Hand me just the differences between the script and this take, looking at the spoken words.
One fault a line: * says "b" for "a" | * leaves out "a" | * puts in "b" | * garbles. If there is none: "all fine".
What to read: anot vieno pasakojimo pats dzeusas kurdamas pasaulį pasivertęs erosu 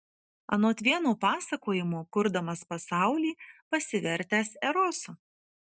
* leaves out "pats dzeusas"